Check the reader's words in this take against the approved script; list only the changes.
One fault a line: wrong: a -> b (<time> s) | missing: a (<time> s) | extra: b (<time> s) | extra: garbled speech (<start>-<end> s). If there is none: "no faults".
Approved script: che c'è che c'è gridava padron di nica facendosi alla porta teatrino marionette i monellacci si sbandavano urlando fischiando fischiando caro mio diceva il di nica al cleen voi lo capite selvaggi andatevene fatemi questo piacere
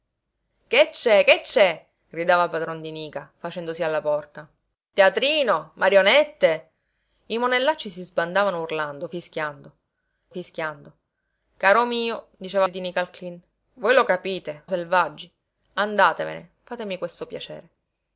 no faults